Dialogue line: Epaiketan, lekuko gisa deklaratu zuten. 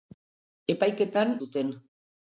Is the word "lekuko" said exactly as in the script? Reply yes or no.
no